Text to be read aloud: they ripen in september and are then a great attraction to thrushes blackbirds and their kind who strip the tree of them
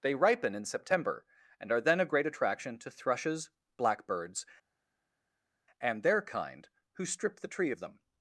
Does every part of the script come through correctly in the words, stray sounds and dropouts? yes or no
yes